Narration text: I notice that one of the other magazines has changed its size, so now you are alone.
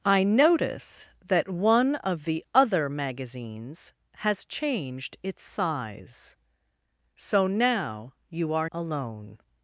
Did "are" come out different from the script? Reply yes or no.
no